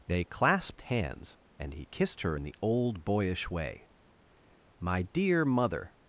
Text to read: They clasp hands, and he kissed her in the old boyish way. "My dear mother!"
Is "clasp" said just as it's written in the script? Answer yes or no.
no